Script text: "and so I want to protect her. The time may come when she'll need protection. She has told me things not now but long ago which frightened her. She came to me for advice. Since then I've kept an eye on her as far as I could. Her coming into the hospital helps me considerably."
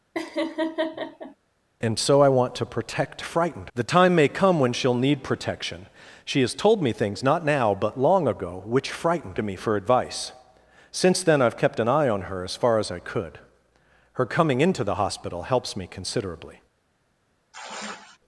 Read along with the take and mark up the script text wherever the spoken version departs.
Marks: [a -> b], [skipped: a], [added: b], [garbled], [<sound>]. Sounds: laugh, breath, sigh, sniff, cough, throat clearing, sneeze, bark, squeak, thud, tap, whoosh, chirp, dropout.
[laugh] "and so I want to protect [her. -> frightened] The time may come when she'll need protection. She has told me things not now but long ago which frightened [skipped: her. She came] to me for advice. Since then I've kept an eye on her as far as I could. Her coming into the hospital helps me considerably." [sigh]